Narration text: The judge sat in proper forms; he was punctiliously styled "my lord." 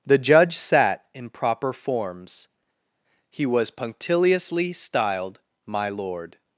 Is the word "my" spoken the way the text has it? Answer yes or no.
yes